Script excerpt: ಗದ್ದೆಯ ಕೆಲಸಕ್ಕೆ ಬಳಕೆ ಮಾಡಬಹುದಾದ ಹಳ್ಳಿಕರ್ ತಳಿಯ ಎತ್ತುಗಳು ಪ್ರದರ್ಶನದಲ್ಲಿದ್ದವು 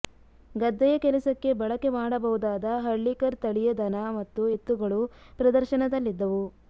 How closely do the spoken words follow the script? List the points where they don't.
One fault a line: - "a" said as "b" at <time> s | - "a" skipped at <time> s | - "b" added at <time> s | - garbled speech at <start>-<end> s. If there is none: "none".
- "ದನ ಮತ್ತು" added at 3.8 s